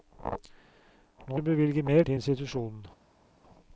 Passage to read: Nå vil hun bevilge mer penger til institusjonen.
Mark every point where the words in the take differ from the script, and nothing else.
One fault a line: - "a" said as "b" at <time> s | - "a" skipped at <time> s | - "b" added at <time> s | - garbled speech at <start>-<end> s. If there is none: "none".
- "vil" skipped at 1.4 s
- "penger" skipped at 2.0 s